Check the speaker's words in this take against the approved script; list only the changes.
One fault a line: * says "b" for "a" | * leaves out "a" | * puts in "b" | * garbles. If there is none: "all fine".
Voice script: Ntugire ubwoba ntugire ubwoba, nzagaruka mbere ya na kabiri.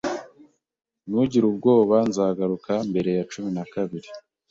* leaves out "ntugire ubwoba"
* puts in "cumi"